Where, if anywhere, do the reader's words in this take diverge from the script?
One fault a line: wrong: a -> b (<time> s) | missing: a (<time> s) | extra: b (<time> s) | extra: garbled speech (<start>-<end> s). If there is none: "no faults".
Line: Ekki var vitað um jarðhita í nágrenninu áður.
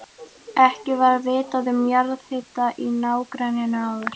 no faults